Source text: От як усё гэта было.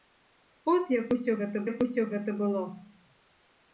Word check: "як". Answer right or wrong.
right